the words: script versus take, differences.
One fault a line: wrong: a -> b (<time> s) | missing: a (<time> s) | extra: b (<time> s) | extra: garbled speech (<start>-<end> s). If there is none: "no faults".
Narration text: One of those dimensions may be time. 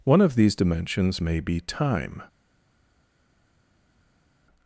wrong: those -> these (0.3 s)